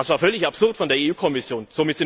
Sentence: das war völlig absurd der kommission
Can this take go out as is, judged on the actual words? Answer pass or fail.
fail